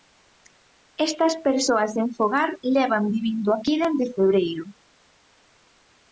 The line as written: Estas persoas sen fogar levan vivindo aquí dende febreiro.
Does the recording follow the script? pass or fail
pass